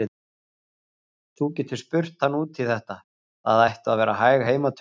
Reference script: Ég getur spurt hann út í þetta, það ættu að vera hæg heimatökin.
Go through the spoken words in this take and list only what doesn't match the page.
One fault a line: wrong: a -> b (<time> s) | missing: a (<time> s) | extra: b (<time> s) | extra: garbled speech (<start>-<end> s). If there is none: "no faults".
wrong: Ég -> Þú (1.4 s)